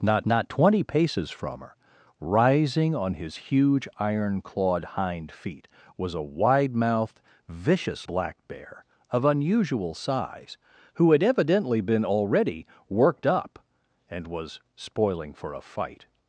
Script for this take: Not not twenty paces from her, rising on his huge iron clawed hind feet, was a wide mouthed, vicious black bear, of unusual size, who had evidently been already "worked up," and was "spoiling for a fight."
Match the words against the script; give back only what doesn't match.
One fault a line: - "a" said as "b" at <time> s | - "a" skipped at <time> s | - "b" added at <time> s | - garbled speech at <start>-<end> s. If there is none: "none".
none